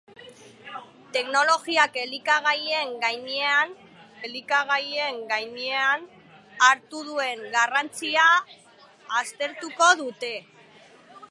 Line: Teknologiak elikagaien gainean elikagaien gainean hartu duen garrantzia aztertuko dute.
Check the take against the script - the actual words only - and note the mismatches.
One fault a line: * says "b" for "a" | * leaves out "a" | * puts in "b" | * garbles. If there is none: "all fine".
all fine